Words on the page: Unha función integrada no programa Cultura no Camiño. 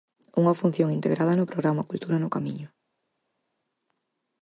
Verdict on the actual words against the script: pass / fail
pass